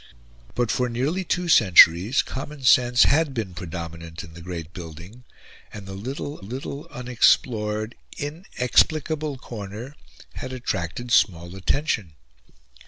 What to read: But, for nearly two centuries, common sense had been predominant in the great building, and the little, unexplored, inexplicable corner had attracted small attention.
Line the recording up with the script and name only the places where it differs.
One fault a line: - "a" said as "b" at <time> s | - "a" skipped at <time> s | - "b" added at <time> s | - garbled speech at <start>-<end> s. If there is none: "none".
- "little" added at 6.4 s